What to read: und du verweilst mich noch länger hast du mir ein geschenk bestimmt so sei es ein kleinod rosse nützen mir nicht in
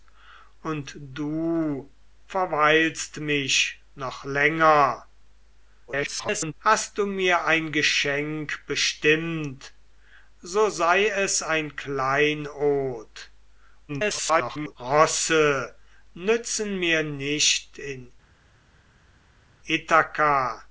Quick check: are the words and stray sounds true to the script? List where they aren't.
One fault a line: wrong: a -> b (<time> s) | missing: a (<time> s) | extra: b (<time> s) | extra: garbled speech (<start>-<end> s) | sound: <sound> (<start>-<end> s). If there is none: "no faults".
extra: garbled speech (5.9-6.5 s)
extra: garbled speech (13.9-14.8 s)